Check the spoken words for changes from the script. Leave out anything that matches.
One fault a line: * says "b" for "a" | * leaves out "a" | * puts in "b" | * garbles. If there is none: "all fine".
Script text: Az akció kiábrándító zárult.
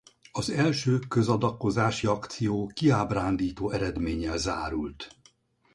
* puts in "első közadakozási"
* puts in "eredménnyel"